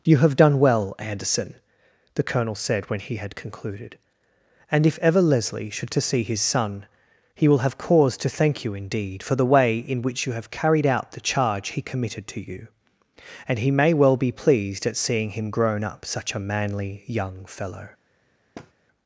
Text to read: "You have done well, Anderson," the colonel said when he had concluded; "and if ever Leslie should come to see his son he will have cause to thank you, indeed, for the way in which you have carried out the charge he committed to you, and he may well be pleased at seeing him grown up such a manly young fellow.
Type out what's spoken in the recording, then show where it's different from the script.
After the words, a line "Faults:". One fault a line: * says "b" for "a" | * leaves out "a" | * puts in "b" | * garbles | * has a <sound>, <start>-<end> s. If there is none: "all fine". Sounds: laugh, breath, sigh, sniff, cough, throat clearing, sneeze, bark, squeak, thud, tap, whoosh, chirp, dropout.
"You have done well, Anderson," the colonel said when he had concluded; "and if ever Leslie should to see his son he will have cause to thank you, indeed, for the way in which you have carried out the charge he committed to you, and he may well be pleased at seeing him grown up such a manly young fellow.
Faults:
* leaves out "come"
* has a thud, 18.5-18.7 s